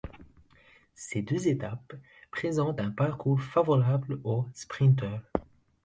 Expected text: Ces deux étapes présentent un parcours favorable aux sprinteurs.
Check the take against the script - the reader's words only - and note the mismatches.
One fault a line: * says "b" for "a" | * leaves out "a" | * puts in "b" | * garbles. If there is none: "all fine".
all fine